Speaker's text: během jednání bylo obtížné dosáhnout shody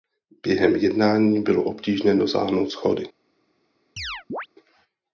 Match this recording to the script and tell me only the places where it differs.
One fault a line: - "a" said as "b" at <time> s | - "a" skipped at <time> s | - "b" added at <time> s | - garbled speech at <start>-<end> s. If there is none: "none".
none